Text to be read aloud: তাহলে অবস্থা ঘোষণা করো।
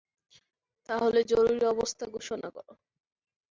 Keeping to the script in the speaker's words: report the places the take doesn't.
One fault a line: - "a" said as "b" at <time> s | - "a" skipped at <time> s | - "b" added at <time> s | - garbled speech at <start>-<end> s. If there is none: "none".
- "জরুরি" added at 1.3 s